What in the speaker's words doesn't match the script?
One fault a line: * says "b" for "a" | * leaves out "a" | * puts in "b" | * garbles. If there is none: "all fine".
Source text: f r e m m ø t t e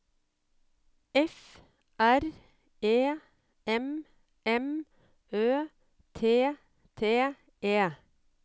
all fine